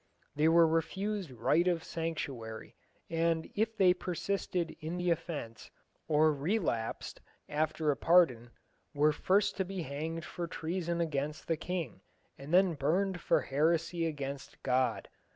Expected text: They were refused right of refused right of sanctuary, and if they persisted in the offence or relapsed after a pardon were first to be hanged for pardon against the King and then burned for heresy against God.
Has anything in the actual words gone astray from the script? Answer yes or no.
yes